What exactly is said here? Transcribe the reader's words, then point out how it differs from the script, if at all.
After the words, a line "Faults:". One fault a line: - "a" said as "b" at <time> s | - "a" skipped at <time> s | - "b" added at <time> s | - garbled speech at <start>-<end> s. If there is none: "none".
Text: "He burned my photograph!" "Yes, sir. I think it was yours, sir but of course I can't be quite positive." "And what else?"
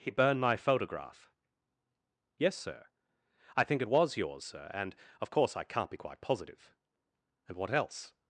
"He burned my photograph!" "Yes, sir. I think it was yours, sir and of course I can't be quite positive." "And what else?"
Faults:
- "but" said as "and" at 4.7 s